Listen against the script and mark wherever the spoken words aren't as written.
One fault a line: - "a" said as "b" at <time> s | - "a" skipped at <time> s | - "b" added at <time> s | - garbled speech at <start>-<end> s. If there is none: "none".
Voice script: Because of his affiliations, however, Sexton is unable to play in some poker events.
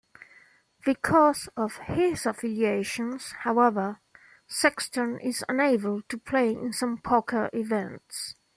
none